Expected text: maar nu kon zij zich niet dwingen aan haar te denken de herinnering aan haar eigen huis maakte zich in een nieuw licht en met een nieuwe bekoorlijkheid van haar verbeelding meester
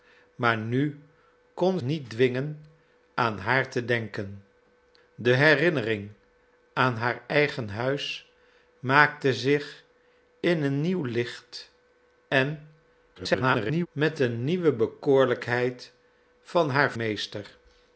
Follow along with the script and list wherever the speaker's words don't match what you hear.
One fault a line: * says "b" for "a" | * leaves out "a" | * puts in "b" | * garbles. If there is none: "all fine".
* leaves out "zij zich"
* garbles
* leaves out "verbeelding"